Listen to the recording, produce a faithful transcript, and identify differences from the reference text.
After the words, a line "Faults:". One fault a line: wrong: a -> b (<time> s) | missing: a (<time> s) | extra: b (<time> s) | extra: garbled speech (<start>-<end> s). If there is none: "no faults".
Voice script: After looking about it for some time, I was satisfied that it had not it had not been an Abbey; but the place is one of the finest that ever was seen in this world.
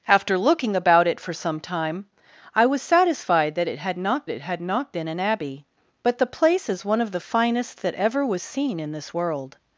After looking about it for some time, I was satisfied that it had not it had not been an Abbey; but the place is one of the finest that ever was seen in this world.
Faults:
no faults